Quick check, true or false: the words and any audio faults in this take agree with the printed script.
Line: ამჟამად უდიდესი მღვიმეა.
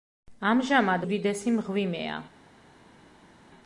true